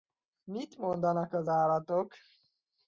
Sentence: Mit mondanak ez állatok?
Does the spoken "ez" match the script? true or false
false